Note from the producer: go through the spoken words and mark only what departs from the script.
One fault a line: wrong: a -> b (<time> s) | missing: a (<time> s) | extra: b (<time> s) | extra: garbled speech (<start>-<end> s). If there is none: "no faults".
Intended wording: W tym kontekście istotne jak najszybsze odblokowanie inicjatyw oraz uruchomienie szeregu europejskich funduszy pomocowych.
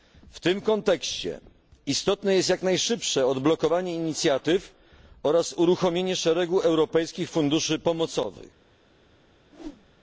extra: jest (2.4 s)